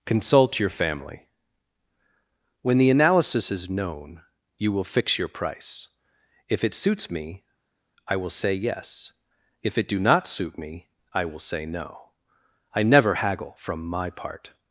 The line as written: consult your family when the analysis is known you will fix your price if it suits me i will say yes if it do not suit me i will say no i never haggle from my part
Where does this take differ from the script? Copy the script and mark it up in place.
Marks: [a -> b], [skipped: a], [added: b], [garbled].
consult your family when the analysis is known you will fix your price if it suits me i will say yes if it do not suit me i will say no i never haggle from my part